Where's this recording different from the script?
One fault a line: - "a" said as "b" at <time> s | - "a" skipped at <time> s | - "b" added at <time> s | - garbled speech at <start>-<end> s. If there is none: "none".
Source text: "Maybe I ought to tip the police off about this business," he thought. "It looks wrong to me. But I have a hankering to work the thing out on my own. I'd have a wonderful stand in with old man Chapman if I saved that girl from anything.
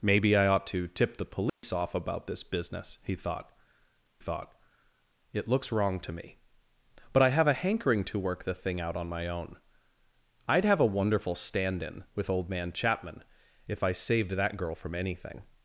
- "thought" added at 4.2 s